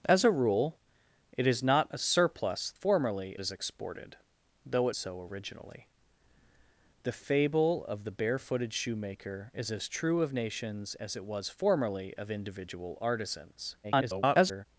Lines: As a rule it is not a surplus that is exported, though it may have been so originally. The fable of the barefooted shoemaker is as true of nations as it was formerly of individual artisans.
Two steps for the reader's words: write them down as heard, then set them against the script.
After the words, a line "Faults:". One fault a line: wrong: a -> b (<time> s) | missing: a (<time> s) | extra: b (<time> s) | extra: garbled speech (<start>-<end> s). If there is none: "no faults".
As a rule it is not a surplus formerly is exported, though it so originally. The fable of the barefooted shoemaker is as true of nations as it was formerly of individual artisans. [garbled]
Faults:
wrong: that -> formerly (2.7 s)
missing: may have been (5.0 s)
extra: garbled speech (13.8-14.7 s)